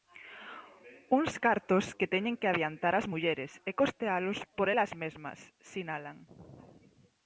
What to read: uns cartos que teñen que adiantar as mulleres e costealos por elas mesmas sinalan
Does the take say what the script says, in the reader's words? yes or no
yes